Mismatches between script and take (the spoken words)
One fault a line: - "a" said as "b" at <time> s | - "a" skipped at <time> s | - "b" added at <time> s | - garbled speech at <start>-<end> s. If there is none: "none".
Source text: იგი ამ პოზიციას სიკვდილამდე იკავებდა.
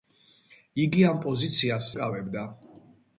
- "სიკვდილამდე" skipped at 1.9 s